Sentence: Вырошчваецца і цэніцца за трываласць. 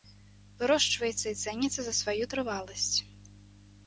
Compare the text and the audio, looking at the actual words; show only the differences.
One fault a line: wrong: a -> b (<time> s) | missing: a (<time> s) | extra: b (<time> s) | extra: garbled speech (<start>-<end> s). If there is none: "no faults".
extra: сваю (2.0 s)